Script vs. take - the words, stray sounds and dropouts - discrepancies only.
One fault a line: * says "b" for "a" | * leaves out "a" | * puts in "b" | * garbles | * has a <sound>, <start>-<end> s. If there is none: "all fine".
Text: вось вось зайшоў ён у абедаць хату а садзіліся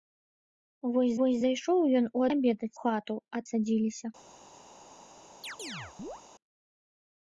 * has a chirp, 5.4-6.2 s